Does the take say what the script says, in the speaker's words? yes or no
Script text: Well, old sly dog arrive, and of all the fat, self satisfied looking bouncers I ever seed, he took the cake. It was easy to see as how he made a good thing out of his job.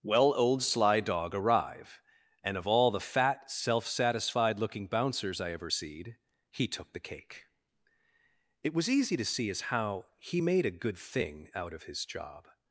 yes